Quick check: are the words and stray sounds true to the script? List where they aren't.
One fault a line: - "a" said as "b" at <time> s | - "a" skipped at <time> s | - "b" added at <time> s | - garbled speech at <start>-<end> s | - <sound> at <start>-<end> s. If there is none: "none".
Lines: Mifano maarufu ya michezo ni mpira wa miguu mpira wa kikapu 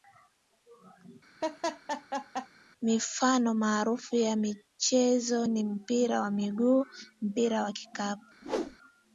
- laugh at 1.4-2.5 s
- whoosh at 8.4-8.8 s